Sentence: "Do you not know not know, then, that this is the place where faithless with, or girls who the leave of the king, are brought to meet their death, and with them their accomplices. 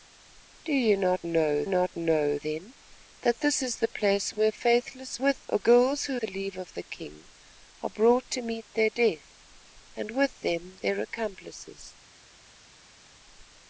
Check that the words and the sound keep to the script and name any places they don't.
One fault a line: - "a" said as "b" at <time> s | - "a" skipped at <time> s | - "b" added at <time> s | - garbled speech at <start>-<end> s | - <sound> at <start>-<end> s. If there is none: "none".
none